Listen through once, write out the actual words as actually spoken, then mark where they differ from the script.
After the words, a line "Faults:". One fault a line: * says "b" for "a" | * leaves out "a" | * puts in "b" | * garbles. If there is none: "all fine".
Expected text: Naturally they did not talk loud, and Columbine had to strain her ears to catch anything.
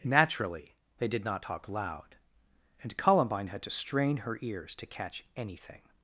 Naturally they did not talk loud, and Columbine had to strain her ears to catch anything.
Faults:
all fine